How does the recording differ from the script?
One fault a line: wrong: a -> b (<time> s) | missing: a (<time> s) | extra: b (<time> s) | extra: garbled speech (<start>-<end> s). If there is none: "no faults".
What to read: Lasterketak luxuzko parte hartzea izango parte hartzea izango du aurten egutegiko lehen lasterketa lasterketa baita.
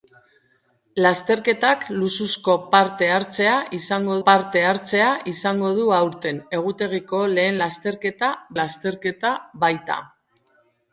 no faults